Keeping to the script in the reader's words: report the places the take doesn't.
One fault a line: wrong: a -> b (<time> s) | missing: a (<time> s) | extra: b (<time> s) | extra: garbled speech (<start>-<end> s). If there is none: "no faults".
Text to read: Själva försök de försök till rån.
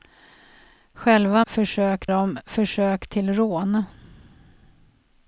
no faults